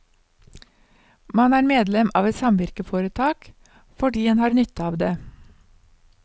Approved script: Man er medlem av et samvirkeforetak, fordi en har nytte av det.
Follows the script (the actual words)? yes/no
yes